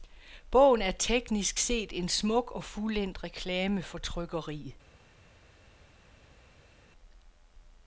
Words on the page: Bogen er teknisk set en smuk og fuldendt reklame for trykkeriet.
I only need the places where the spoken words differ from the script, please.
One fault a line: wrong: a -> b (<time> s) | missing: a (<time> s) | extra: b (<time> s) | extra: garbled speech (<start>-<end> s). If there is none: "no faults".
no faults